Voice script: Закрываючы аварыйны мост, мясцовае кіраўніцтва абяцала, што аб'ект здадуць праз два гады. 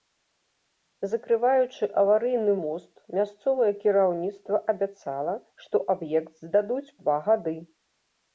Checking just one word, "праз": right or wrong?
wrong